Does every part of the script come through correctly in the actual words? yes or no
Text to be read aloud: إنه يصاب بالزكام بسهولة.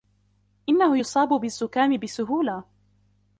yes